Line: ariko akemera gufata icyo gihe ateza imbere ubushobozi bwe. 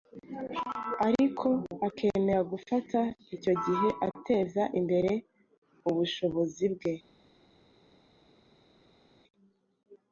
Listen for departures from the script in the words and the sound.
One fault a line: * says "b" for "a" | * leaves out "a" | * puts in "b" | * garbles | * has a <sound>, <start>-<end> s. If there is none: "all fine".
all fine